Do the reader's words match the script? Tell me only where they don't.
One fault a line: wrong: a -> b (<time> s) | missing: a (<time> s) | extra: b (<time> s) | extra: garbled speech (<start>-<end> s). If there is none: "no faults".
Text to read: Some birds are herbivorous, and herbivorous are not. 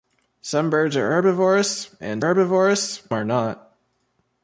no faults